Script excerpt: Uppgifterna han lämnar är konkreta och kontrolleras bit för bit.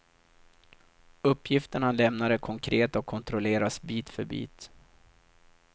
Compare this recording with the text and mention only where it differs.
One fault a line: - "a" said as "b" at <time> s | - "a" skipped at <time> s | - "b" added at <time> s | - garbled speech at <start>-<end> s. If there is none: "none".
none